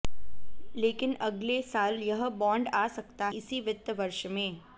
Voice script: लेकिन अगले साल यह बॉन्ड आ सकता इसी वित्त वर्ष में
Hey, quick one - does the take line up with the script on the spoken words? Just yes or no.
yes